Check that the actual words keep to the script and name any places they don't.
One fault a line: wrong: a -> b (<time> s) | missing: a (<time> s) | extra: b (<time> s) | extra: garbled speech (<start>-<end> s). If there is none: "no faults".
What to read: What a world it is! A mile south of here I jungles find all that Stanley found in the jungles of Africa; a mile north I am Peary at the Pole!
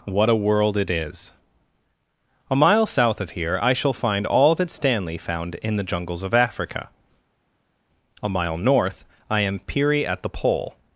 wrong: jungles -> shall (3.7 s)